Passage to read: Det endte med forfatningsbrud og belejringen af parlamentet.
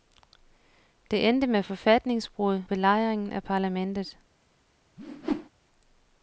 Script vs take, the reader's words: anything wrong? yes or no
yes